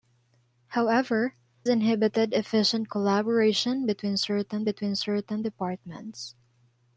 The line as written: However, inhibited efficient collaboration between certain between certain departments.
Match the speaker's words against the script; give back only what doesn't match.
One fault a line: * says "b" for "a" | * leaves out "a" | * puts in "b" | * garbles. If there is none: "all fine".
all fine